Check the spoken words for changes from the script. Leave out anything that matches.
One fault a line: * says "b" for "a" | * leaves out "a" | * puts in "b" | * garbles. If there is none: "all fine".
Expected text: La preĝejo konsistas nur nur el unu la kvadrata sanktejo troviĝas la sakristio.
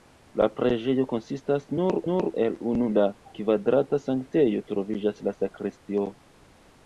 all fine